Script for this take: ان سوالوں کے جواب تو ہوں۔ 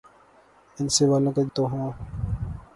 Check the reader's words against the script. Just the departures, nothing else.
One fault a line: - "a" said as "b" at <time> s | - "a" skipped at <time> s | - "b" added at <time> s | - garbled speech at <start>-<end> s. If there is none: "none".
- "جواب" skipped at 1.4 s